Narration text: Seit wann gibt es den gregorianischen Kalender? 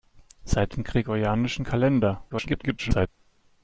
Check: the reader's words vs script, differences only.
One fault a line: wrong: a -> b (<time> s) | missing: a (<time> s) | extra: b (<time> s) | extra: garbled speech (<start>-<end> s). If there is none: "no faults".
missing: wann gibt es (0.8 s)
extra: garbled speech (2.3-3.1 s)